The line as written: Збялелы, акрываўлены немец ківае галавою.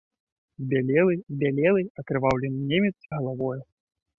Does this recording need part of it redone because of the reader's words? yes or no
yes